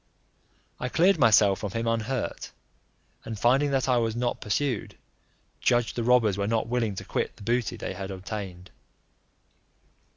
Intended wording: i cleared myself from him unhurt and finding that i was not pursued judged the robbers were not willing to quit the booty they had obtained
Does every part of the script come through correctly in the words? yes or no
yes